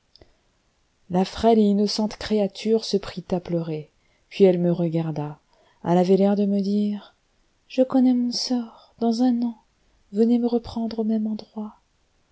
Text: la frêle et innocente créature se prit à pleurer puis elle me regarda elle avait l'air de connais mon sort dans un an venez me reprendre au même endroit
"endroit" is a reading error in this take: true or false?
false